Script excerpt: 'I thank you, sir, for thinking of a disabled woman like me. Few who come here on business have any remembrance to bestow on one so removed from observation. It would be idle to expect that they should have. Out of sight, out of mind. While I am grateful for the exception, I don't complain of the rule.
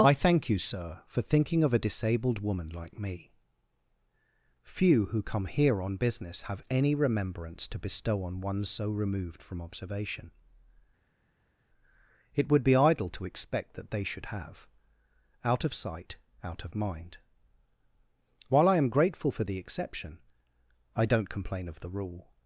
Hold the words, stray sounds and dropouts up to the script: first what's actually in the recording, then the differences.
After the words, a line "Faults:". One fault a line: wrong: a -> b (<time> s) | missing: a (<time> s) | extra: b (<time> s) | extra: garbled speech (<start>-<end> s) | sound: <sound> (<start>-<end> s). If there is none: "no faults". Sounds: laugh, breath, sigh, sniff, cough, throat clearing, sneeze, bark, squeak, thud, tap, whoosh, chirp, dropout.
'I thank you, sir, for thinking of a disabled woman like me. Few who come here on business have any remembrance to bestow on one so removed from observation. It would be idle to expect that they should have. Out of sight, out of mind. While I am grateful for the exception, I don't complain of the rule.
Faults:
no faults